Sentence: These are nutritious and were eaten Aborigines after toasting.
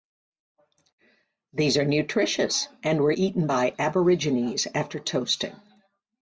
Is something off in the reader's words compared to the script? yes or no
yes